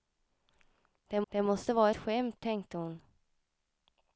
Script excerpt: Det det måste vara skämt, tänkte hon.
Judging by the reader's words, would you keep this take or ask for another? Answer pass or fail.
pass